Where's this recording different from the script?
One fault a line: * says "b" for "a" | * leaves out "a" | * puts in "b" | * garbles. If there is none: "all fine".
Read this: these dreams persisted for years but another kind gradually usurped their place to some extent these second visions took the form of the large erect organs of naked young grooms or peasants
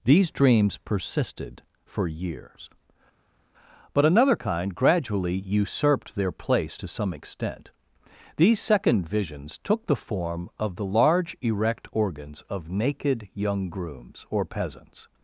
all fine